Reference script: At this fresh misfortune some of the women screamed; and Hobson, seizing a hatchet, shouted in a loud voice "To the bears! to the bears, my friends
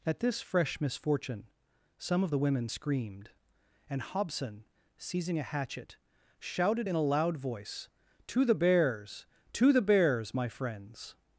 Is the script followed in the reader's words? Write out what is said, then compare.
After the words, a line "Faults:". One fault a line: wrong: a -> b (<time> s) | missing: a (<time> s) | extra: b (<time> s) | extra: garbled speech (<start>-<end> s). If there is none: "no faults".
At this fresh misfortune some of the women screamed; and Hobson, seizing a hatchet, shouted in a loud voice "To the bears! to the bears, my friends
Faults:
no faults